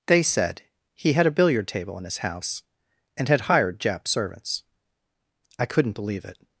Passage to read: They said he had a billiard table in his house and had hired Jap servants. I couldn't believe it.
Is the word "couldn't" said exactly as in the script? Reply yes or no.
yes